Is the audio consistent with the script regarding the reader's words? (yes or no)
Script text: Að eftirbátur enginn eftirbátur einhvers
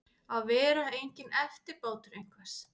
no